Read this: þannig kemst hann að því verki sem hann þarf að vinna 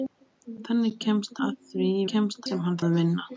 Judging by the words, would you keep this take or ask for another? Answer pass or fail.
fail